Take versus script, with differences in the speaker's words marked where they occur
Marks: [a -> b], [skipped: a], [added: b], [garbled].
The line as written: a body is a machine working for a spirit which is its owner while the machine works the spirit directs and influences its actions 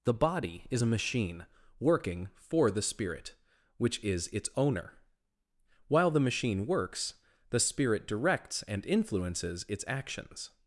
[a -> the] body is a machine working for [a -> the] spirit which is its owner while the machine works the spirit directs and influences its actions